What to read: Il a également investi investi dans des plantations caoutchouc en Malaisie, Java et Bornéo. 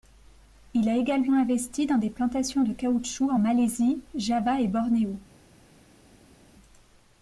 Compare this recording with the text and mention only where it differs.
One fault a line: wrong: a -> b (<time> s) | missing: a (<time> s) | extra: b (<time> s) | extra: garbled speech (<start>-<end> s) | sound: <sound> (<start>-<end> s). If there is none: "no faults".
missing: investi (1.9 s)
extra: de (2.6 s)